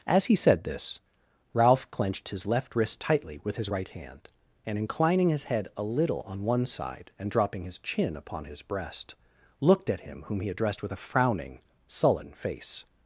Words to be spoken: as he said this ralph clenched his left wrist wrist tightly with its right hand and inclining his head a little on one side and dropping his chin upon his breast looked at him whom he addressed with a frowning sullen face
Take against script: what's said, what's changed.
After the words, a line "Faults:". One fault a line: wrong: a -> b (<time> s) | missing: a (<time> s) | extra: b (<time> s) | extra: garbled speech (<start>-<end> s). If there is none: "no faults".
as he said this ralph clenched his left wrist tightly with his right hand and inclining his head a little on one side and dropping his chin upon his breast looked at him whom he addressed with a frowning sullen face
Faults:
missing: wrist (3.0 s)
wrong: its -> his (3.6 s)